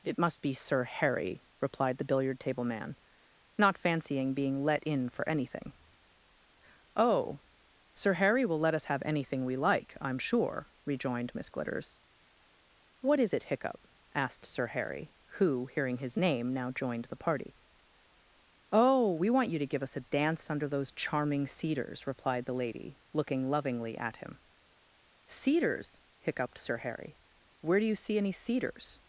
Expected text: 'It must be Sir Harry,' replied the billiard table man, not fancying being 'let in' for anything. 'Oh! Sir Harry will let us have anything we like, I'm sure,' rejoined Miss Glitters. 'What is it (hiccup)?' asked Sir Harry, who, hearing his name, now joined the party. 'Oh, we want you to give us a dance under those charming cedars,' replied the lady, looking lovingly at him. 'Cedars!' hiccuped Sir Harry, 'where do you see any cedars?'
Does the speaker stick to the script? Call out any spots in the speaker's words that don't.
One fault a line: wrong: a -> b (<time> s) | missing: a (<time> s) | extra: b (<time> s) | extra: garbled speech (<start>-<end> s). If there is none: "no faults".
no faults